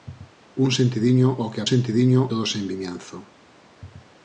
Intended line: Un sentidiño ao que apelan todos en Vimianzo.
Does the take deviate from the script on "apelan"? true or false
true